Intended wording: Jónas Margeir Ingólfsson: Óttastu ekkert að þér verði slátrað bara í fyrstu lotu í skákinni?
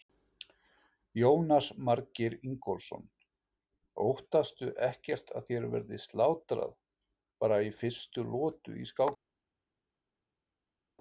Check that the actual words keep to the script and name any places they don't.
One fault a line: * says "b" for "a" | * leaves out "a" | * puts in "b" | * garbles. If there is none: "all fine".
all fine